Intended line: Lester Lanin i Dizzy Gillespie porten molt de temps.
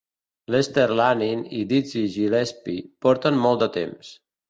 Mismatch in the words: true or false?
false